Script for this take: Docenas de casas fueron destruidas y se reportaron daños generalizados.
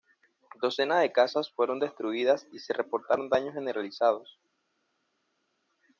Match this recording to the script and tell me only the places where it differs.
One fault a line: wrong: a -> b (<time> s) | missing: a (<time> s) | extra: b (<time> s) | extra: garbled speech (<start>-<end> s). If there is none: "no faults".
no faults